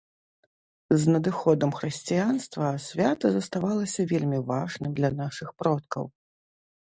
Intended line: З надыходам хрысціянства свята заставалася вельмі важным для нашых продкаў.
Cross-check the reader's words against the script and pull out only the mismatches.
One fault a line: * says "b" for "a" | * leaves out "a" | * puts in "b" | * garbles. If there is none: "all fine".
all fine